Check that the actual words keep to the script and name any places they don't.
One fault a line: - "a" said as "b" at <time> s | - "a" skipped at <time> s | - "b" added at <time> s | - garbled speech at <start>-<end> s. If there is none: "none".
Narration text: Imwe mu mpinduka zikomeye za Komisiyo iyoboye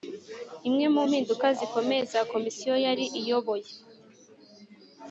- "yari" added at 2.8 s